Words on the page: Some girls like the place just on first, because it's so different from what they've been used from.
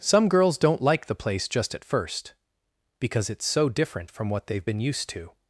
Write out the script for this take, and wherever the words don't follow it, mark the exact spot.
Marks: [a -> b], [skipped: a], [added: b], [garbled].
Some girls [added: don't] like the place just [on -> at] first, because it's so different from what they've been used [from. -> to]